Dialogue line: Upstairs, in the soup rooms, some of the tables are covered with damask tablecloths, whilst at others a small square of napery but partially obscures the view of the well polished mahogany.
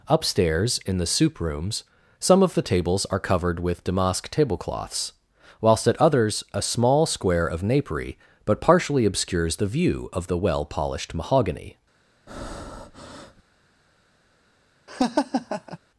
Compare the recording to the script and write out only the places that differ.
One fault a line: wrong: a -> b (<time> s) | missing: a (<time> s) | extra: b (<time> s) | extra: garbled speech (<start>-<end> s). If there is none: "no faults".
no faults